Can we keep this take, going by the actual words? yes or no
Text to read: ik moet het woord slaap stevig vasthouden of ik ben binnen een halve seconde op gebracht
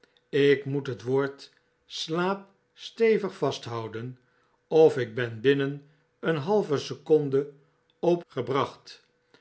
yes